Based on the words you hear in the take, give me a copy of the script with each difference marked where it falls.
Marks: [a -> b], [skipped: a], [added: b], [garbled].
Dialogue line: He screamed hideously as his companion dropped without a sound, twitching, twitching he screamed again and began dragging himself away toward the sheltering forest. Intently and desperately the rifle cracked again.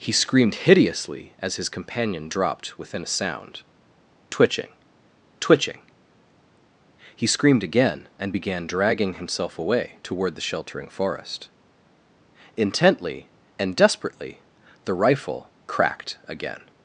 He screamed hideously as his companion dropped [without -> within] a sound, twitching, twitching he screamed again and began dragging himself away toward the sheltering forest. Intently and desperately the rifle cracked again.